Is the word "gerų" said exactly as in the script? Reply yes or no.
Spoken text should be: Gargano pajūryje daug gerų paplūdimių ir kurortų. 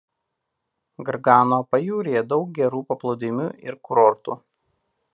yes